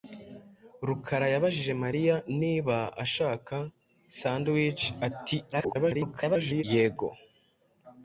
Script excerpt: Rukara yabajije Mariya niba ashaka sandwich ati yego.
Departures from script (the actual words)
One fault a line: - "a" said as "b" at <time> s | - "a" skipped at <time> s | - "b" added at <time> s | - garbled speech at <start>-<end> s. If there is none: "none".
- garbled speech at 5.5-6.6 s